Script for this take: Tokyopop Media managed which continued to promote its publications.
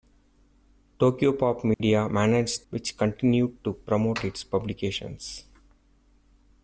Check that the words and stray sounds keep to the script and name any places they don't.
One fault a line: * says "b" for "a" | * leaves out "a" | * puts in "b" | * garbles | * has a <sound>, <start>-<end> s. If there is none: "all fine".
* has a dropout, 1.7-1.8 s